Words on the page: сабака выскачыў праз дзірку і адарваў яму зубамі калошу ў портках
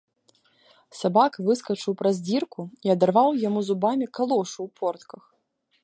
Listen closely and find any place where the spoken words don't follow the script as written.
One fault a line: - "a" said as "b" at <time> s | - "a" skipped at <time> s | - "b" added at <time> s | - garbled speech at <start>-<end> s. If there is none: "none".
none